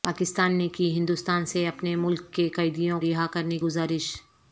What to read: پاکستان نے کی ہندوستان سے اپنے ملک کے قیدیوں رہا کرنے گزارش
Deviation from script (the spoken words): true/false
false